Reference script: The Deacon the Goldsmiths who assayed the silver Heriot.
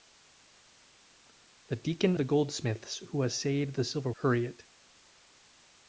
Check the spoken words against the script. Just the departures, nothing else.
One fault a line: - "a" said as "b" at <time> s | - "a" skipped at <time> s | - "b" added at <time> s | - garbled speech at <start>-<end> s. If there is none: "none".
none